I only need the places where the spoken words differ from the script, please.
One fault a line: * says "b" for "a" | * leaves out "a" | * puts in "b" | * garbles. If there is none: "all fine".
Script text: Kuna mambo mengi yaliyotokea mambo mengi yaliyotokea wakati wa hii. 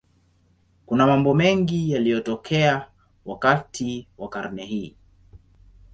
* leaves out "mambo mengi yaliyotokea"
* puts in "karne"